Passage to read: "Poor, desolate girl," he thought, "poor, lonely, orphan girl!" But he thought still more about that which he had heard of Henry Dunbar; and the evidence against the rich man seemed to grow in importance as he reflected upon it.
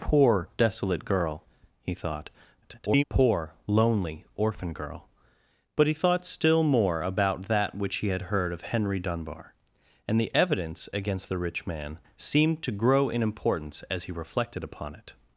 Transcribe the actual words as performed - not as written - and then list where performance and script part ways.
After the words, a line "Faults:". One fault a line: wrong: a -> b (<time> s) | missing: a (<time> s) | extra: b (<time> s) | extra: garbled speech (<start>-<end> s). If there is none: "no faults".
"Poor, desolate girl," he thought, [garbled] "poor, lonely, orphan girl!" But he thought still more about that which he had heard of Henry Dunbar; and the evidence against the rich man seemed to grow in importance as he reflected upon it.
Faults:
extra: garbled speech (2.6-3.0 s)